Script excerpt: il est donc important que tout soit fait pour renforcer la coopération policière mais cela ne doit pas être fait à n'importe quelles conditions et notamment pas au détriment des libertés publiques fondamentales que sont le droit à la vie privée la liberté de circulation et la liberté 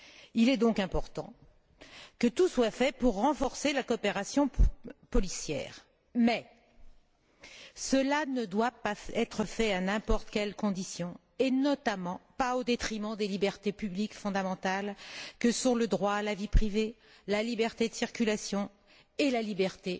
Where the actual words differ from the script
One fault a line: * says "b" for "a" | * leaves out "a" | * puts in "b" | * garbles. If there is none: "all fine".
all fine